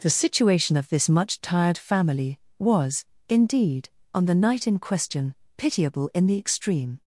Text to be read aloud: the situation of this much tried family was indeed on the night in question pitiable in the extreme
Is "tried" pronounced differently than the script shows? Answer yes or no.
yes